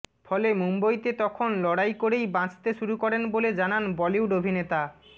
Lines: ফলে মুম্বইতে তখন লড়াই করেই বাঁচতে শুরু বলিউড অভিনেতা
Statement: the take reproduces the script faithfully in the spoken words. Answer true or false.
false